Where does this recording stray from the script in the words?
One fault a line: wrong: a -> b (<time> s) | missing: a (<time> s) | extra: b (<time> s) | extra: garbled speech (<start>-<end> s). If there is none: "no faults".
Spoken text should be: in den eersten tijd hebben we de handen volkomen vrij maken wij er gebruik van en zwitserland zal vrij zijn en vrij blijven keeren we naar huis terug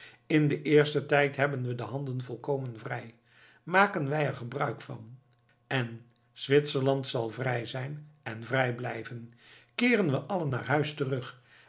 extra: allen (10.2 s)